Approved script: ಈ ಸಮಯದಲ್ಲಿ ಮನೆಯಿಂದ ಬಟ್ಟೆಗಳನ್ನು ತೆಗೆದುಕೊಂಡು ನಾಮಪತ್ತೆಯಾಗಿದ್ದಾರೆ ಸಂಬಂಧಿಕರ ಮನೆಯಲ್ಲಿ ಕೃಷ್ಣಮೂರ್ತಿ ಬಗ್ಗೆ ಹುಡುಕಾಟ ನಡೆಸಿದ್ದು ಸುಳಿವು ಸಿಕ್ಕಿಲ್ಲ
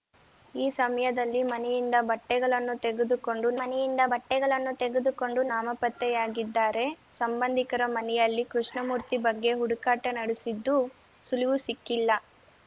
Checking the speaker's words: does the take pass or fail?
fail